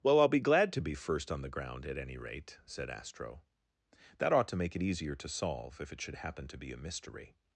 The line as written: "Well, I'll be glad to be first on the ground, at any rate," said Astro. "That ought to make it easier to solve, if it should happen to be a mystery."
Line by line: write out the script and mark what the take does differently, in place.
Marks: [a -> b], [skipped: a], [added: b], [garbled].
"Well, I'll be glad to be first on the ground, at any rate," said Astro. "That ought to make it easier to solve, if it should happen to be a mystery."